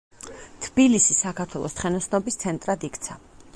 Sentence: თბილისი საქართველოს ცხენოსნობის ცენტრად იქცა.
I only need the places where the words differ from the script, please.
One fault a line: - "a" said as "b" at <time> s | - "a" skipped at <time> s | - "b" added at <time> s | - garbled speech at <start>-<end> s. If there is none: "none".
none